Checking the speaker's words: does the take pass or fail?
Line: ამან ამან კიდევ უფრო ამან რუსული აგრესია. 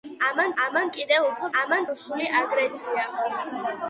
pass